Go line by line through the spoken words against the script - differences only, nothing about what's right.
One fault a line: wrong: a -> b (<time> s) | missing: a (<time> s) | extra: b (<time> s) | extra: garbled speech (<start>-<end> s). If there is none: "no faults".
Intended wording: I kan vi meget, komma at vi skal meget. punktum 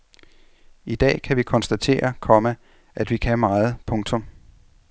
extra: dag (0.9 s)
wrong: meget -> konstatere (1.4 s)
wrong: skal -> kan (3.2 s)